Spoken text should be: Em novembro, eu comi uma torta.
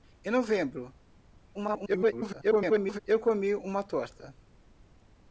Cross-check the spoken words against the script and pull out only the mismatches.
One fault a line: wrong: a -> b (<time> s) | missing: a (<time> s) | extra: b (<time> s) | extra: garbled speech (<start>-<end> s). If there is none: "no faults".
extra: garbled speech (1.5-3.0 s)